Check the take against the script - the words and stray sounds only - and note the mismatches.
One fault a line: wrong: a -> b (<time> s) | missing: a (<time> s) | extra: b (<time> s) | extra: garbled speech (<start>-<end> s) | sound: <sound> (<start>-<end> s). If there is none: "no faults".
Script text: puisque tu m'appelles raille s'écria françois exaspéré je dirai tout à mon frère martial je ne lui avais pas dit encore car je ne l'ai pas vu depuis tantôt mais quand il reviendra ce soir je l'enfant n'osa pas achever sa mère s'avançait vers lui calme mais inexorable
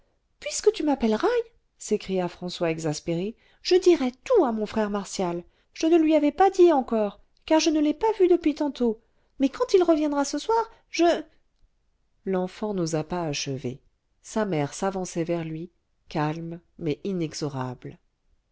no faults